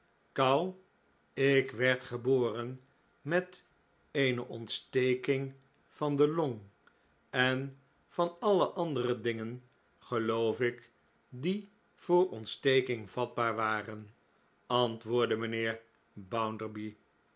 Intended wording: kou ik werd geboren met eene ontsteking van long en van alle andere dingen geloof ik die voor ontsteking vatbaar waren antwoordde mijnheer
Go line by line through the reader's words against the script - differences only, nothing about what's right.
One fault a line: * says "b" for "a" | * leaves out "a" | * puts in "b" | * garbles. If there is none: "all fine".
* puts in "de"